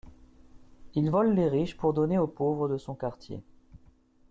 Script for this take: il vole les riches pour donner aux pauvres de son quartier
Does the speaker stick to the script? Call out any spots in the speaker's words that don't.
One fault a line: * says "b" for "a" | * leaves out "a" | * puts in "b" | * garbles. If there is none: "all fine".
all fine